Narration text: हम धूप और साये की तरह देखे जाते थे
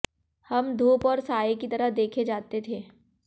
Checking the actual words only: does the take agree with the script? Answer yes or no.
yes